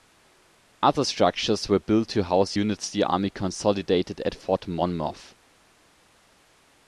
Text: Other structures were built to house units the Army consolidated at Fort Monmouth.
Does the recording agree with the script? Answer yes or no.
yes